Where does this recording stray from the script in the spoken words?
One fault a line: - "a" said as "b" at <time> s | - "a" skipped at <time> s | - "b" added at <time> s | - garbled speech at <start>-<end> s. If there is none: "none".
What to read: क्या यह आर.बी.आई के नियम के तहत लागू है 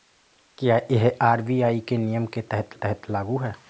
- "तहत" added at 2.7 s